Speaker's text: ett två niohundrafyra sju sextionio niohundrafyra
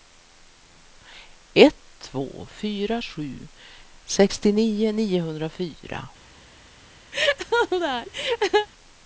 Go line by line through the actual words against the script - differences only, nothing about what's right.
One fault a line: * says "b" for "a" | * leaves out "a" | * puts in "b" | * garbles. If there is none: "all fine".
* says "fyra" for "niohundrafyra"